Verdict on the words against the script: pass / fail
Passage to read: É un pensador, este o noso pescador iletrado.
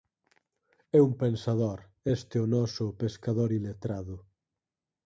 pass